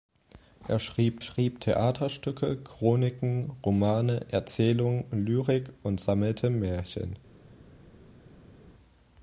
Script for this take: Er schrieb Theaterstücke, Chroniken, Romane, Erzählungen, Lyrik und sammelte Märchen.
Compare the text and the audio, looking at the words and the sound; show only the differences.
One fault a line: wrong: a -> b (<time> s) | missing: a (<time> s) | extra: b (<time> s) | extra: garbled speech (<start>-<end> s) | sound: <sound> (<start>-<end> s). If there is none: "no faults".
extra: schrieb (1.2 s)